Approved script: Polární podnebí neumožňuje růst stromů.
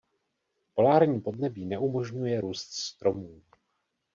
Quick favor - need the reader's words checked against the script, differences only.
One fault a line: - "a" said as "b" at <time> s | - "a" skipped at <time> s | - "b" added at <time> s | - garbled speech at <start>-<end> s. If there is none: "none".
none